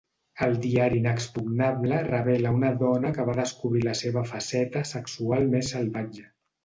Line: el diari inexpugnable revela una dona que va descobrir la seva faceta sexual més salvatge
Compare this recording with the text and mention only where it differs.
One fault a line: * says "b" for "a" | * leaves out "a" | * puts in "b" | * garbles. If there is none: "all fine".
all fine